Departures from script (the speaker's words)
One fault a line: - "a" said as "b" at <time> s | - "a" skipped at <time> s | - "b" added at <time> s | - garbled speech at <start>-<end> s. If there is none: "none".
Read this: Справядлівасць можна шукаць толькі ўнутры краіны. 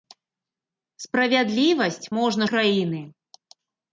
- "шукаць толькі ўнутры" skipped at 2.4 s